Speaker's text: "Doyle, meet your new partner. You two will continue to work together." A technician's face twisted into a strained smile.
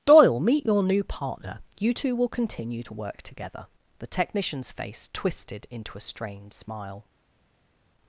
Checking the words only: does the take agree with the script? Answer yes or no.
no